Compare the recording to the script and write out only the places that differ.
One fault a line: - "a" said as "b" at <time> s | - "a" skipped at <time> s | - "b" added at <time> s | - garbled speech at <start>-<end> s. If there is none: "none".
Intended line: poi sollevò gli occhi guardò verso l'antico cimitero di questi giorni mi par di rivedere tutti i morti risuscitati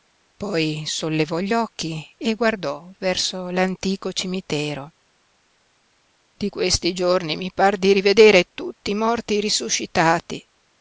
- "e" added at 2.2 s